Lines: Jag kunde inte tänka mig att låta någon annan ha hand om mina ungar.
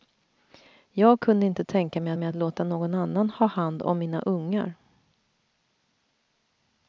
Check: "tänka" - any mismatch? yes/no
no